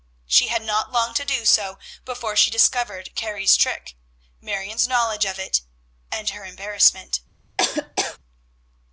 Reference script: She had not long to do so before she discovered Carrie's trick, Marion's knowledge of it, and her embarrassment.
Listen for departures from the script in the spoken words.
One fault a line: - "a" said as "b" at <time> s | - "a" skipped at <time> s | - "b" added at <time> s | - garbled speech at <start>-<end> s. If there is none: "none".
none